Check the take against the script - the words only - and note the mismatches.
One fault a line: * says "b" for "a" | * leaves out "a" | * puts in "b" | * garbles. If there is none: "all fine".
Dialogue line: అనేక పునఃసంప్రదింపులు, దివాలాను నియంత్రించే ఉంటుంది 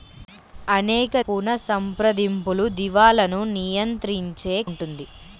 all fine